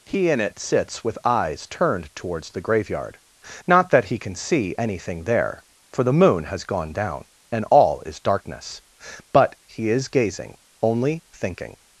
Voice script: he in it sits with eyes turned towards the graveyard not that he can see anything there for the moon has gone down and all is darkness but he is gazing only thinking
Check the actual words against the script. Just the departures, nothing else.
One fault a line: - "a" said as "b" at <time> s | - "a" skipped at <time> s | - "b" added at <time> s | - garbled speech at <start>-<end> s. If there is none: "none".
none